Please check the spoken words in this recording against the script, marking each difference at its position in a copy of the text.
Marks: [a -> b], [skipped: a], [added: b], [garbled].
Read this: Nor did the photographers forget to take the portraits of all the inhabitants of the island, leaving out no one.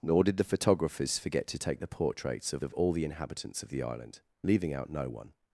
Nor did the photographers forget to take the portraits of [added: of] all the inhabitants of the island, leaving out no one.